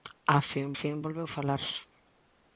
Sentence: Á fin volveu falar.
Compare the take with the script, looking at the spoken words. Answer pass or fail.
fail